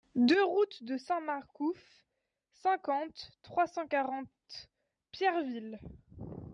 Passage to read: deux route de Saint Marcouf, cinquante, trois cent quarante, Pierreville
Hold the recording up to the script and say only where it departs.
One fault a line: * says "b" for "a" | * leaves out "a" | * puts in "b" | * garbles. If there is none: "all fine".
all fine